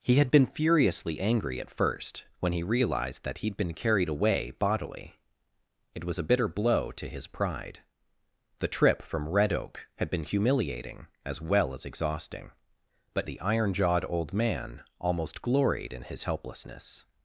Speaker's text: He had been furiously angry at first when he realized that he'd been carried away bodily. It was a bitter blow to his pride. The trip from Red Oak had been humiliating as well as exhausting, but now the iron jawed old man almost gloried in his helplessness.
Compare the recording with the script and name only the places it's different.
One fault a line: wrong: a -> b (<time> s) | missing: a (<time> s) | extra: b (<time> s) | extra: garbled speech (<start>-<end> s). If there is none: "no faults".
missing: now (13.3 s)